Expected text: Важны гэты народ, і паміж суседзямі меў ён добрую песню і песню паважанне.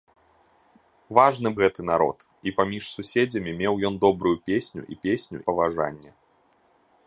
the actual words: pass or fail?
pass